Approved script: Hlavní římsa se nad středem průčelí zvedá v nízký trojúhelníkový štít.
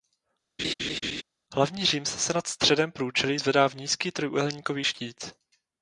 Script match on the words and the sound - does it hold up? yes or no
no